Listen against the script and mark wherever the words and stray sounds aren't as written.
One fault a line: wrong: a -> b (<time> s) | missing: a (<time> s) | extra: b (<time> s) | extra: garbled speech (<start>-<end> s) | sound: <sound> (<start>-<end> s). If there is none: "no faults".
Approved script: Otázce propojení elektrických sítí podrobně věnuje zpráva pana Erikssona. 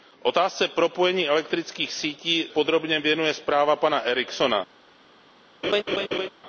sound: laugh (5.6-6.3 s)